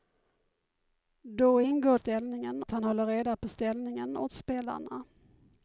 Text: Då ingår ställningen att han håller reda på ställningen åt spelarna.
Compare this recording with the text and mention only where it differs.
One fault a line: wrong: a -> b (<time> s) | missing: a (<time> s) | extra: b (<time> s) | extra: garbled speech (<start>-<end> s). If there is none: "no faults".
no faults